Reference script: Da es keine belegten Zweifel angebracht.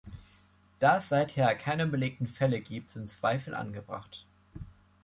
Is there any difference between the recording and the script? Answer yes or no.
yes